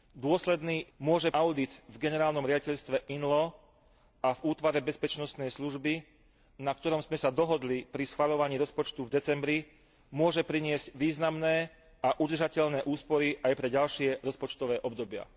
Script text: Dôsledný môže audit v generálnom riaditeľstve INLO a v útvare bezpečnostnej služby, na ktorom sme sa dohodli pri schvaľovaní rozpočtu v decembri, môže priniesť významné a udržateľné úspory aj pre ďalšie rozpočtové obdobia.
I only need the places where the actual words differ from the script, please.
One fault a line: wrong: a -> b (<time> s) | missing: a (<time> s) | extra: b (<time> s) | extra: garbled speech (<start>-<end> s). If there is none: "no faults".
no faults